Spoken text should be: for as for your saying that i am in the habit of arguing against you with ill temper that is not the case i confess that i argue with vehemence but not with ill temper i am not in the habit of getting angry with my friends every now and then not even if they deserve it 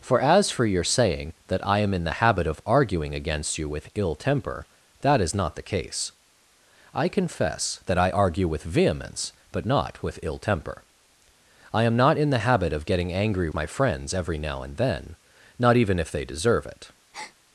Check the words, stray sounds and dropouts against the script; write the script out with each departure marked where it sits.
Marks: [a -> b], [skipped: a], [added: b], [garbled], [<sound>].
for as for your saying that i am in the habit of arguing against you with ill temper that is not the case i confess that i argue with vehemence but not with ill temper i am not in the habit of getting angry [skipped: with] my friends every now and then not even if they deserve it [breath]